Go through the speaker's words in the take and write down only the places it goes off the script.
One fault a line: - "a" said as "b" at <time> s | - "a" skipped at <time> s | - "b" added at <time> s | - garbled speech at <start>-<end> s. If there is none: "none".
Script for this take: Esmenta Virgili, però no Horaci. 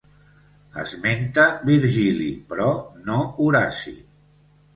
none